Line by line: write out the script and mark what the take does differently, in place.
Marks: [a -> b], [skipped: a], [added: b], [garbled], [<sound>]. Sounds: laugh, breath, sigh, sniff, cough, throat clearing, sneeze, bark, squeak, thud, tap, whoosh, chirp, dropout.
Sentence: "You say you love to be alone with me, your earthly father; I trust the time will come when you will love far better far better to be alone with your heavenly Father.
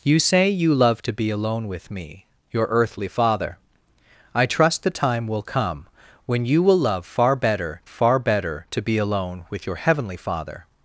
"You say you love to be alone with me, your earthly father; I trust the time will come when you will love far better far better to be alone with your heavenly Father.